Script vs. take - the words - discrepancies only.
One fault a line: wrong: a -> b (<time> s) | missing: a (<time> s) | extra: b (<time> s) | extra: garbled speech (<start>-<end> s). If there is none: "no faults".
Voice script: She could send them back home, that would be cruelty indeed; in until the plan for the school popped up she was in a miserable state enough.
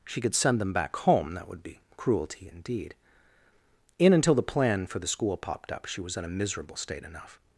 no faults